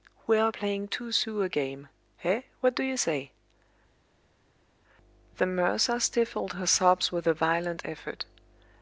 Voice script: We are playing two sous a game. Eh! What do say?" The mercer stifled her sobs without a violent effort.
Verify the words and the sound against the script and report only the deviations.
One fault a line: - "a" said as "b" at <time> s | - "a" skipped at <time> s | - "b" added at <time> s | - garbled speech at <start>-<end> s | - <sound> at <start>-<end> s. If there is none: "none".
- "you" added at 2.8 s
- "without" said as "with" at 7.1 s